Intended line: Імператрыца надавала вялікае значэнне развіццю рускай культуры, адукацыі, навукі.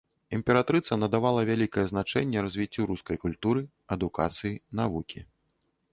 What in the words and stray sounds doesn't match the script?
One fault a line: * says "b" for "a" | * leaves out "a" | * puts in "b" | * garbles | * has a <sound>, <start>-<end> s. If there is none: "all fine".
all fine